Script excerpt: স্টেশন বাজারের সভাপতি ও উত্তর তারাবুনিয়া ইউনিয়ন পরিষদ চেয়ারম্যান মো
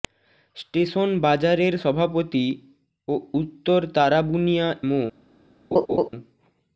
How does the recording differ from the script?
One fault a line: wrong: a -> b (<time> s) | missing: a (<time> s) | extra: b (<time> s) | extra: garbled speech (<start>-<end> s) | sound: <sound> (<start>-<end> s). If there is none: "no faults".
missing: ইউনিয়ন পরিষদ চেয়ারম্যান (4.7 s)
sound: laugh (5.7-6.1 s)